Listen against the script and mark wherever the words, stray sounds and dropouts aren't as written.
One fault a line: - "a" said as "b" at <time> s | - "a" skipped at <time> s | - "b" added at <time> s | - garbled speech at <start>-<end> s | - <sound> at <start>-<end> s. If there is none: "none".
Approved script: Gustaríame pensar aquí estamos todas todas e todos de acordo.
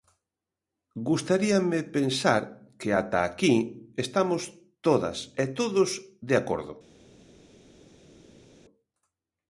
- "que ata" added at 2.8 s
- "todas" skipped at 5.2 s